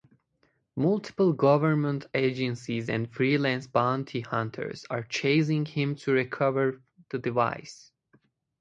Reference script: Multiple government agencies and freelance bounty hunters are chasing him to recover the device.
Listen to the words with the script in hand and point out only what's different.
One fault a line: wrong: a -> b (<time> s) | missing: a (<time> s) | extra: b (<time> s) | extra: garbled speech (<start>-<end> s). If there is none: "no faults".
no faults